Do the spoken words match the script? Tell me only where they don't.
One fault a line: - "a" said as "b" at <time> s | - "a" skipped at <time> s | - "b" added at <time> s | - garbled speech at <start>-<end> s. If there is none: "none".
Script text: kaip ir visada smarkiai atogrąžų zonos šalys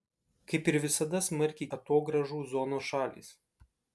none